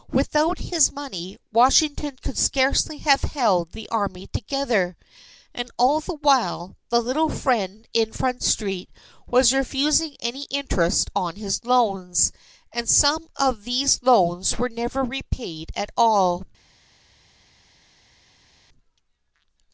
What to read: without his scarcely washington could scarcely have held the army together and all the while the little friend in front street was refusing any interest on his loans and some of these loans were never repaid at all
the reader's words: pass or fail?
fail